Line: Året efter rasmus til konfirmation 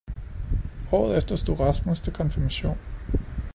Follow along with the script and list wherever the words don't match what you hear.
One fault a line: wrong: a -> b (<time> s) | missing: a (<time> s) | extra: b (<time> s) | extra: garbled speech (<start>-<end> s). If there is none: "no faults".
extra: stod (1.3 s)